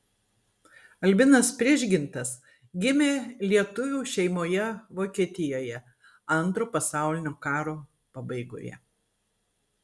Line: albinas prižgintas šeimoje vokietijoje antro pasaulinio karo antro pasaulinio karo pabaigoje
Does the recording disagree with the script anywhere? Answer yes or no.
yes